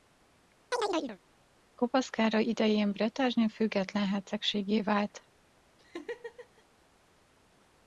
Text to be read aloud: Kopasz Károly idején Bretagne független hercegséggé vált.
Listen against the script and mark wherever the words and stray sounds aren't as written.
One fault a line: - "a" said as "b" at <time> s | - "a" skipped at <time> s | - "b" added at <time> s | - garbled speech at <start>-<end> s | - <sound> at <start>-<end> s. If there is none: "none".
- chirp at 0.7-1.2 s
- laugh at 5.8-6.6 s